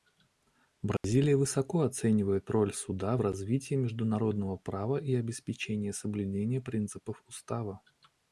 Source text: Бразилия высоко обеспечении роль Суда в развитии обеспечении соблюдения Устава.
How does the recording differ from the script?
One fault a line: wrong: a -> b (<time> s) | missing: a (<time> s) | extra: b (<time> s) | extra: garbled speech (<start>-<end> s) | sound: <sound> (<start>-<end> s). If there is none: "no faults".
sound: dropout (1.0-1.0 s)
wrong: обеспечении -> оценивает (1.8 s)
extra: международного права и (3.7 s)
extra: принципов (6.6 s)